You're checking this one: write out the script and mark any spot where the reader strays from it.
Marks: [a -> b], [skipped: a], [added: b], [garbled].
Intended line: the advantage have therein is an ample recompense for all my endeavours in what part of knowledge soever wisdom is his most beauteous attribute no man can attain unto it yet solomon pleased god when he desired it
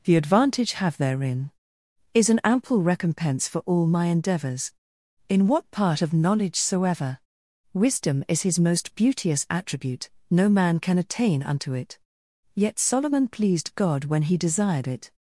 the advantage have therein is an ample recompense for all my endeavours in what part of knowledge soever wisdom is his most beauteous attribute no man can attain unto it yet solomon pleased god when he desired it